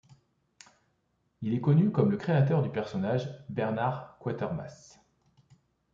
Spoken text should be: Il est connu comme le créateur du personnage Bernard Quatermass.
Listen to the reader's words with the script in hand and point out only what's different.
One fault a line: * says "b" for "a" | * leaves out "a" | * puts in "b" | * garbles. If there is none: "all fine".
all fine